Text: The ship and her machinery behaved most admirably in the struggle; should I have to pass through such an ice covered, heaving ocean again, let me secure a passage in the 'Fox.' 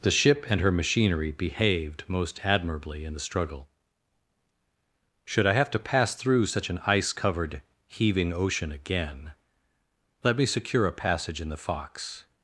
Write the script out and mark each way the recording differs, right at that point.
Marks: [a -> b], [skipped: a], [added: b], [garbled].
The ship and her machinery behaved most admirably in the struggle; should I have to pass through such an ice covered, heaving ocean again, let me secure a passage in the 'Fox.'